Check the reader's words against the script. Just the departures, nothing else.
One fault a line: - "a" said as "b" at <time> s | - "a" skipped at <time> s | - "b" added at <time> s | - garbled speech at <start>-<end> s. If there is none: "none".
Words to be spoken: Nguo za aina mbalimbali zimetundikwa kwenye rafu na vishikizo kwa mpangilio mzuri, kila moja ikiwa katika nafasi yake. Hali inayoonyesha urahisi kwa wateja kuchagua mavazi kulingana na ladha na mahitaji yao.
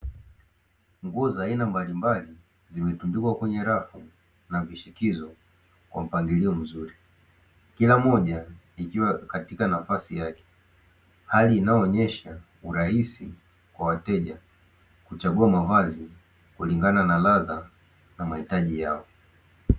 none